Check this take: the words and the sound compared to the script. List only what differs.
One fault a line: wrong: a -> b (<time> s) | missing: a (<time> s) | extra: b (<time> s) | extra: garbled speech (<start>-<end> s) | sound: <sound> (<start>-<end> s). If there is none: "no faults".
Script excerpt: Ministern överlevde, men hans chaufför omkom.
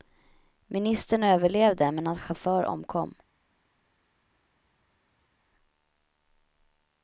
no faults